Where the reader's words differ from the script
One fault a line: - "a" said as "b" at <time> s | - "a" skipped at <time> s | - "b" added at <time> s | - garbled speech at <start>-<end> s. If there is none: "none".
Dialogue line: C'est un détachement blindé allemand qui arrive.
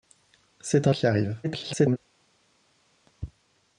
- "détachement blindé allemand" skipped at 0.9 s
- garbled speech at 1.4-2.0 s